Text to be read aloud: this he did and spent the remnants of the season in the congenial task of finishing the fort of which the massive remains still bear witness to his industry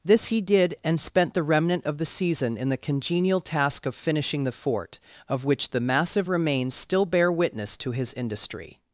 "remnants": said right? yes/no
no